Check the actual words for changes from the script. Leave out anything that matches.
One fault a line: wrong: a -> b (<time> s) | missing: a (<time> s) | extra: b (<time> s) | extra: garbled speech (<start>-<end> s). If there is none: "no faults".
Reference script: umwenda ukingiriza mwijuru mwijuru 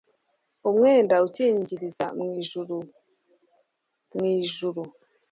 no faults